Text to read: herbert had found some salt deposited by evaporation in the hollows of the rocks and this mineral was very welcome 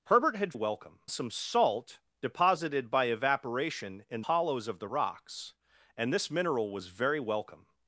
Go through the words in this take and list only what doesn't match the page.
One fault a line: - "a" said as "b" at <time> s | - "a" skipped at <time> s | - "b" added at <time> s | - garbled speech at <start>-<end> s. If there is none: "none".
- "found" said as "welcome" at 0.5 s
- "the" skipped at 4.2 s